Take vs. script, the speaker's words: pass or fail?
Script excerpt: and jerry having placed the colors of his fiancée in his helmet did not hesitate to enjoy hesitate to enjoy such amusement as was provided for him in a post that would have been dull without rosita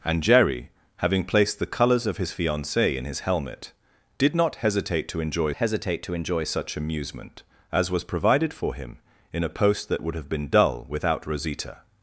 pass